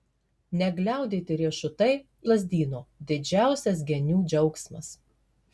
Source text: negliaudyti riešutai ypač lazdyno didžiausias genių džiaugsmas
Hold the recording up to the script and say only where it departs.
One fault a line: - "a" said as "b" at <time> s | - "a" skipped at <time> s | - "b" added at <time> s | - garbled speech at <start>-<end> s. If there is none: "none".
- "ypač" skipped at 1.9 s